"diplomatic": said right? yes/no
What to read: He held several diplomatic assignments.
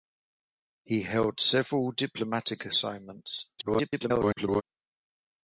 yes